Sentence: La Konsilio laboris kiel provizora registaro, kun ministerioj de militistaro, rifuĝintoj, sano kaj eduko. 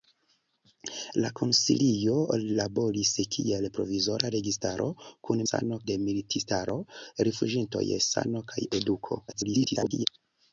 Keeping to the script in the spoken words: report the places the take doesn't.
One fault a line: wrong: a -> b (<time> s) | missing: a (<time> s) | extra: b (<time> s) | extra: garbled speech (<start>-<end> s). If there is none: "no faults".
wrong: ministerioj -> sano (5.5 s)
extra: garbled speech (9.3-10.1 s)